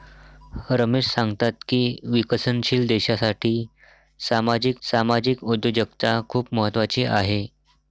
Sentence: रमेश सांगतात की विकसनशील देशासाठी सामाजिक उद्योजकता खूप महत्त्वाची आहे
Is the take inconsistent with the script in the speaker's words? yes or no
yes